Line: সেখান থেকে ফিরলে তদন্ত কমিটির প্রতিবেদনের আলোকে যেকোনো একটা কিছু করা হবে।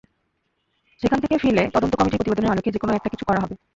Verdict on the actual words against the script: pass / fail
pass